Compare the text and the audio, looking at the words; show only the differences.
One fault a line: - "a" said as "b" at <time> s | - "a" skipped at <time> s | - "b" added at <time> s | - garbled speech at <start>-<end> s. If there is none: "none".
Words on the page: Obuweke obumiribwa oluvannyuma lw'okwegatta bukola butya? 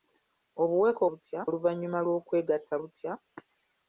- "obumiribwa" said as "butya" at 1.1 s
- "bukola" skipped at 2.7 s